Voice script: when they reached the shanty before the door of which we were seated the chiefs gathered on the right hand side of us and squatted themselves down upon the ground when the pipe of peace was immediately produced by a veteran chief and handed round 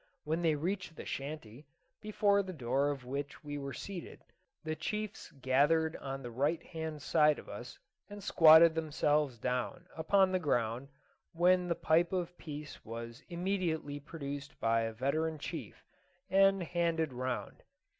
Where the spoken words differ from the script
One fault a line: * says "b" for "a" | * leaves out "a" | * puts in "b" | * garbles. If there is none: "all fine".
all fine